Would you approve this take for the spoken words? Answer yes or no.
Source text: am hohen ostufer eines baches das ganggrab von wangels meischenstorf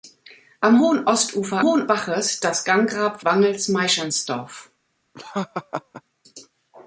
no